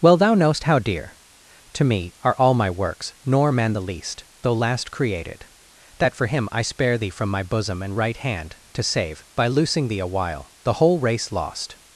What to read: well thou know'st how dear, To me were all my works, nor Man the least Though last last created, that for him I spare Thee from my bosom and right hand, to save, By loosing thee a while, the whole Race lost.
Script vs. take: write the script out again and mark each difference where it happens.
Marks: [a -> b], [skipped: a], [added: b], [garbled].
well thou know'st how dear, To me [were -> are] all my works, nor Man the least Though last [skipped: last] created, that for him I spare Thee from my bosom and right hand, to save, By loosing thee a while, the whole Race lost.